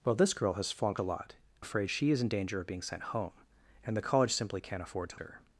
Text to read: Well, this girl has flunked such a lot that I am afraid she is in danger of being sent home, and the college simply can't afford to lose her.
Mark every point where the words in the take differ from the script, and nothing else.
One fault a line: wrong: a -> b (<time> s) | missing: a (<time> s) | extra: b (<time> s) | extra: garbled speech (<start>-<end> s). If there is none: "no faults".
missing: such (1.0 s)
missing: that I am (1.3 s)
missing: lose (5.2 s)